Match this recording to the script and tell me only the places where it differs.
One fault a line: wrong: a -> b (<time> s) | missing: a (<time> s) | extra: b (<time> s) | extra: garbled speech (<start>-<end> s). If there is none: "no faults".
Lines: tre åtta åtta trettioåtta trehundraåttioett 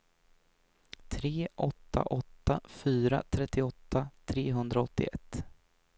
extra: fyra (2.7 s)